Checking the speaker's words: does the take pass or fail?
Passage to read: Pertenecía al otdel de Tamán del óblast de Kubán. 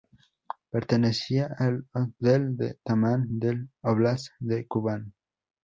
pass